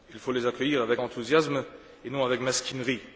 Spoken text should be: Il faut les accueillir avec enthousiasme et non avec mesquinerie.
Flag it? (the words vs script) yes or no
no